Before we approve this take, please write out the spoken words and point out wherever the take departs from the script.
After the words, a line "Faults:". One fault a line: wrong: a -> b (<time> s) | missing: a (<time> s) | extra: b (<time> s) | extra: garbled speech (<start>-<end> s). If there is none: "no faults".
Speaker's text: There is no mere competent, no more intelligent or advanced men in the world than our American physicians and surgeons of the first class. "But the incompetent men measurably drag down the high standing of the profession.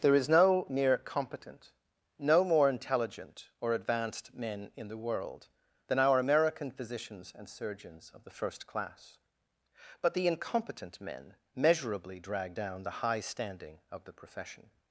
There is no mere competent, no more intelligent or advanced men in the world than our American physicians and surgeons of the first class. "But the incompetent men measurably drag down the high standing of the profession.
Faults:
no faults